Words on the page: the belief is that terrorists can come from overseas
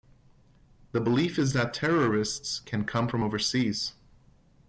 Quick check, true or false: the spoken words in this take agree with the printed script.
true